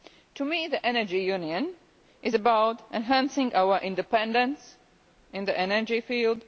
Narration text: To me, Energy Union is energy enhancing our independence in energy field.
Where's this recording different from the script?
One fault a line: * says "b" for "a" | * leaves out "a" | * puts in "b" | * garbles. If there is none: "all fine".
* puts in "the"
* says "about" for "energy"
* puts in "the"